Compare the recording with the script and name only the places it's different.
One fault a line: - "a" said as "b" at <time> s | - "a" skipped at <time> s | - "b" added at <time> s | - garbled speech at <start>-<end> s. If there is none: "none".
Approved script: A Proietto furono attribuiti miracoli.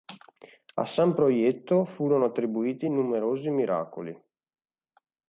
- "San" added at 0.8 s
- "numerosi" added at 2.9 s